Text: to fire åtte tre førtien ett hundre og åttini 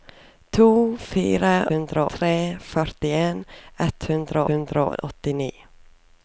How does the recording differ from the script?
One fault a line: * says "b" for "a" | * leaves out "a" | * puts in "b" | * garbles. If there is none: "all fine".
* says "hundre" for "åtte"
* puts in "hundre"